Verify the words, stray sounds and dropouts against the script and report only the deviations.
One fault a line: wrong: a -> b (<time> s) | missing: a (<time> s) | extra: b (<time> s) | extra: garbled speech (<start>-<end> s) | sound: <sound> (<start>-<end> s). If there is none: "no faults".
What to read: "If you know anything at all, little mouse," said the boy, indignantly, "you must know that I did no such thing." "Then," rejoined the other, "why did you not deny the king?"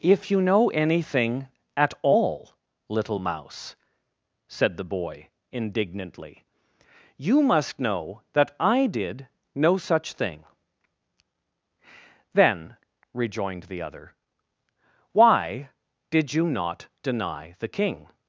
no faults